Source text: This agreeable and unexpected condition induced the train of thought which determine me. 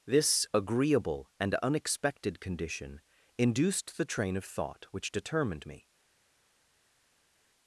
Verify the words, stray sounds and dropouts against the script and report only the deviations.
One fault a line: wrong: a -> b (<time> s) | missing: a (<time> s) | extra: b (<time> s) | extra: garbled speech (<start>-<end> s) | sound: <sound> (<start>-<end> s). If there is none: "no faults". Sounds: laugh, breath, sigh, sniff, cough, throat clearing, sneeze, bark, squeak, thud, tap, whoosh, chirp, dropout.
wrong: determine -> determined (5.1 s)